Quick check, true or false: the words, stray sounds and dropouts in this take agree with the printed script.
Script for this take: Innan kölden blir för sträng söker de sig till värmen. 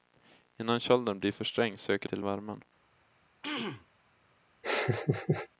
false